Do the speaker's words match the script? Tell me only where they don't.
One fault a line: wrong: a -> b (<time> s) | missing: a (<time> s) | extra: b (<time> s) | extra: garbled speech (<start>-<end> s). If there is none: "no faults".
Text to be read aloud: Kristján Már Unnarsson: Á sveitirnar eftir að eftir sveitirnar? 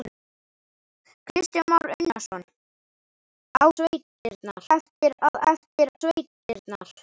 no faults